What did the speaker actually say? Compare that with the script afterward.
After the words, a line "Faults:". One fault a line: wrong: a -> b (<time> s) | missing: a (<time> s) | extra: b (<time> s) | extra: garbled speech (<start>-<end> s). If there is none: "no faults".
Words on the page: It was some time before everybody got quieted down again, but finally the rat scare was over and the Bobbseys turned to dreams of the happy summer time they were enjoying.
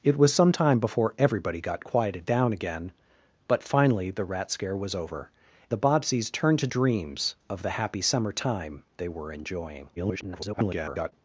It was some time before everybody got quieted down again, but finally the rat scare was over the Bobbseys turned to dreams of the happy summer time they were enjoying. [garbled]
Faults:
missing: and (5.3 s)
extra: garbled speech (10.0-11.1 s)